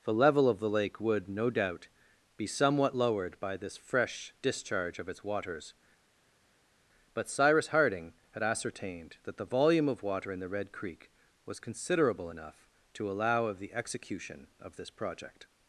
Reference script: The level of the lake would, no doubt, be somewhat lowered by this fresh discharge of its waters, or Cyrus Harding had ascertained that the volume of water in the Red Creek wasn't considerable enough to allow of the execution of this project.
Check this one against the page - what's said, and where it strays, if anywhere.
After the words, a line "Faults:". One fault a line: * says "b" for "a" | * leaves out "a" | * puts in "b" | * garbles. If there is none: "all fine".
The level of the lake would, no doubt, be somewhat lowered by this fresh discharge of its waters, but Cyrus Harding had ascertained that the volume of water in the Red Creek was considerable enough to allow of the execution of this project.
Faults:
* says "but" for "or"
* says "was" for "wasn't"